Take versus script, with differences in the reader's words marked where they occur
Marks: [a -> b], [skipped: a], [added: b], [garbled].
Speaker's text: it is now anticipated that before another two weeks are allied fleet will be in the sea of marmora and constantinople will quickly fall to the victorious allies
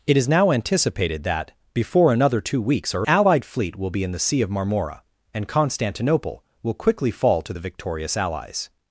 it is now anticipated that before another two weeks are allied fleet will be in the sea of marmora and constantinople will quickly fall to the victorious allies